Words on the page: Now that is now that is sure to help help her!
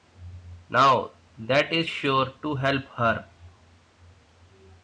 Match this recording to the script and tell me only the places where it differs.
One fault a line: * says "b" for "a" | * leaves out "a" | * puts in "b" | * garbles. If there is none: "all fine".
* leaves out "now that is"
* leaves out "help"